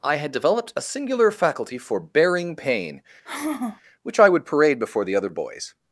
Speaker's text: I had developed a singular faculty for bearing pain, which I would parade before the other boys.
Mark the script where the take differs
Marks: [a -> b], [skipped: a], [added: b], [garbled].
I had developed a singular faculty for bearing pain, which I would parade before the other boys.